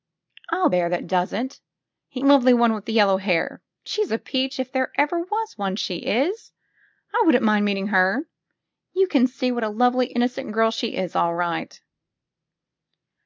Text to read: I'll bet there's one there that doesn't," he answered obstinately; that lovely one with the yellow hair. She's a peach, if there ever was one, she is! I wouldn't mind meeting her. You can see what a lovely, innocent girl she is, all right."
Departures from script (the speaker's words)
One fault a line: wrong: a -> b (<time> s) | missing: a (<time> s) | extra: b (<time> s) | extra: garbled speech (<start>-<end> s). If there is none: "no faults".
missing: bet there's one (0.7 s)
missing: answered obstinately that (2.2 s)